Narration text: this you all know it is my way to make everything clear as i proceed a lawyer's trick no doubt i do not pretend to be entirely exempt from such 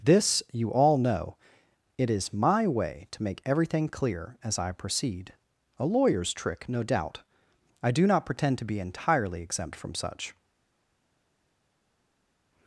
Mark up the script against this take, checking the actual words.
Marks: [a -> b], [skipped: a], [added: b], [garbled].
this you all know it is my way to make everything clear as i proceed a lawyer's trick no doubt i do not pretend to be entirely exempt from such